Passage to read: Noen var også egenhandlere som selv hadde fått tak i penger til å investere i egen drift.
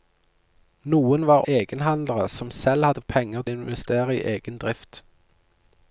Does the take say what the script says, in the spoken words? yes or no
no